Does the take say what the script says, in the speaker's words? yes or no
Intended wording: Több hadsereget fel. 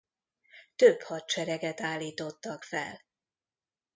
no